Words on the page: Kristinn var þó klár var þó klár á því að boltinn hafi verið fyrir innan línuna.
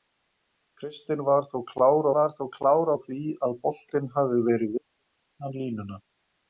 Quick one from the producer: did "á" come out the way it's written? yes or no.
yes